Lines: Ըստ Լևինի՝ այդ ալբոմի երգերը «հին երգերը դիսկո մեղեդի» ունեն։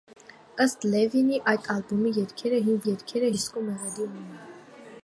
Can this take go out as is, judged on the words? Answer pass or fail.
pass